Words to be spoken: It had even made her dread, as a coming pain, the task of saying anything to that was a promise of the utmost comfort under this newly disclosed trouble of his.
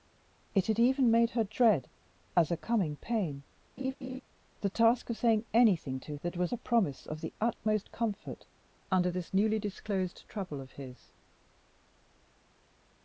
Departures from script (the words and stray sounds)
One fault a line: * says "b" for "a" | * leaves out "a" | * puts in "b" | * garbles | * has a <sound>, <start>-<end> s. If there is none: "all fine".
* has a laugh, 3.8-4.2 s